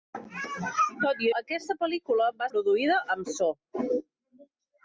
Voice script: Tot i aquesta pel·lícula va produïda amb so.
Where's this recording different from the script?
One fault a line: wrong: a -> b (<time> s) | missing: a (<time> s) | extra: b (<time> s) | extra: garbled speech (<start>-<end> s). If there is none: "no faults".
no faults